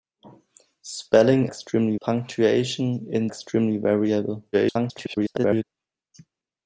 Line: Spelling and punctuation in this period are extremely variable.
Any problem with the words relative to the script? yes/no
yes